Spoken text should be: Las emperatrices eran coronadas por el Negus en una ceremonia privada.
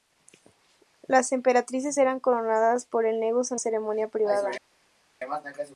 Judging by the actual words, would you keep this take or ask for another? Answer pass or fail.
fail